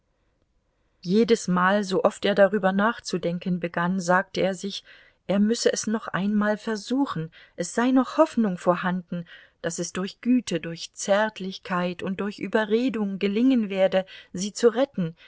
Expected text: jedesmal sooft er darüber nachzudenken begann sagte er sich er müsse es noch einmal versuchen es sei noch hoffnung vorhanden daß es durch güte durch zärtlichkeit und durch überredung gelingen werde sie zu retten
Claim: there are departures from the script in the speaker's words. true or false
false